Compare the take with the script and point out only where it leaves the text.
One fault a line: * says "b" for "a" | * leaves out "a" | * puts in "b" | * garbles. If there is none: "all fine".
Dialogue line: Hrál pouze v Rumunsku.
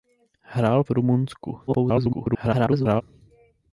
* leaves out "pouze"
* garbles